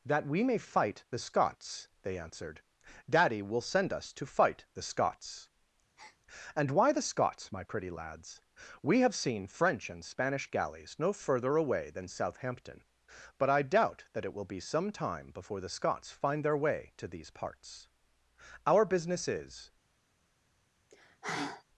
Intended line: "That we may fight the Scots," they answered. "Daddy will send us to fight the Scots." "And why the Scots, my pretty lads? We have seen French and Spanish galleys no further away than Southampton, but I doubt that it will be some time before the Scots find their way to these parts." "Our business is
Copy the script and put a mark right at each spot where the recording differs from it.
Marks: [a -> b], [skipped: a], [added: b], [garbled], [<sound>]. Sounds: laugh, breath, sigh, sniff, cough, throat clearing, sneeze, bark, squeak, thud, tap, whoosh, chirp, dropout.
"That we may fight the Scots," they answered. "Daddy will send us to fight the Scots." [breath] "And why the Scots, my pretty lads? We have seen French and Spanish galleys no further away than Southampton, but I doubt that it will be some time before the Scots find their way to these parts." "Our business is [sigh]